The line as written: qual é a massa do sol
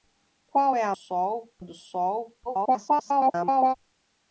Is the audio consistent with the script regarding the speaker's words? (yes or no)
no